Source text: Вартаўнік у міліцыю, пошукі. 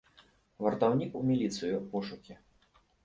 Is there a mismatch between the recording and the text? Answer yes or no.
no